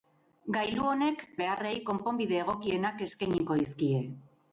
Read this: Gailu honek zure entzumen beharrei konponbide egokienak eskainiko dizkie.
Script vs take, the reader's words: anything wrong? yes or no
yes